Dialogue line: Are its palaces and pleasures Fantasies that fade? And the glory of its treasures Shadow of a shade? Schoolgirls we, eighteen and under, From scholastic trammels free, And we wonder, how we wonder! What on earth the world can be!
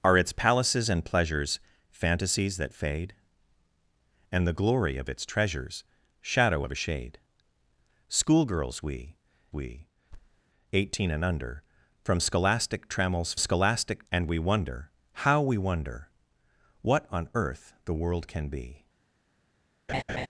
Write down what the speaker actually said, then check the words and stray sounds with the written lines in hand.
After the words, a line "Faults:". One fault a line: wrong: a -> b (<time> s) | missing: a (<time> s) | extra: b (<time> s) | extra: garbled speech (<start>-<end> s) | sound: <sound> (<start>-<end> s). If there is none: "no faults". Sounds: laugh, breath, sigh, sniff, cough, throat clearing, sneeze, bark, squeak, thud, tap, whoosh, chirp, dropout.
Are its palaces and pleasures Fantasies that fade? And the glory of its treasures Shadow of a shade? Schoolgirls we we, eighteen and under, From scholastic trammels scholastic, And we wonder, how we wonder! What on earth the world can be!
Faults:
extra: we (9.5 s)
sound: thud (10.1-10.4 s)
wrong: free -> scholastic (13.4 s)
sound: laugh (19.9-20.3 s)